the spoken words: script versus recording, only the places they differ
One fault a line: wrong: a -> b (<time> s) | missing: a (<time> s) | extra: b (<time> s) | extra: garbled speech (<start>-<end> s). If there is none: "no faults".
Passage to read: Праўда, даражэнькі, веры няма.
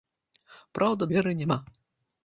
missing: даражэнькі (1.0 s)